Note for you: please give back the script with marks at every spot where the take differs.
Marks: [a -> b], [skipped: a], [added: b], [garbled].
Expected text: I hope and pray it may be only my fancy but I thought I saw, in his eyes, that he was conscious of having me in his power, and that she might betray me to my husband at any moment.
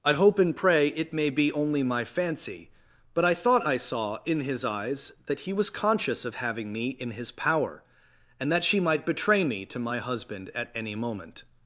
I hope and pray it may be only my fancy but I thought I saw, in his eyes, that he was conscious of having me in his power, and that she might betray me to my husband at any moment.